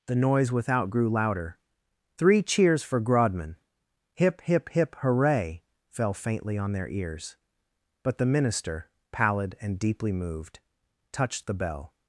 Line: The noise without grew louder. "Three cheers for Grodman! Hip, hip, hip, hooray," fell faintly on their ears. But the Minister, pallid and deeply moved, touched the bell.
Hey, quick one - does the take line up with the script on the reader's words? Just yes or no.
yes